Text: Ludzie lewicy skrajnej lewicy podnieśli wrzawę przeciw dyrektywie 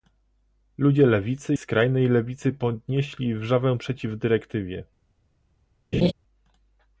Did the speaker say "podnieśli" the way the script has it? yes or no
yes